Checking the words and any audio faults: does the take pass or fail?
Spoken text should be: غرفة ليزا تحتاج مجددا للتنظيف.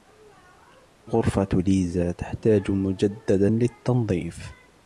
pass